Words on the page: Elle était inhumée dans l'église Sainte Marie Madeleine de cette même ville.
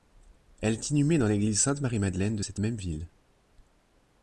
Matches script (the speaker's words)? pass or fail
fail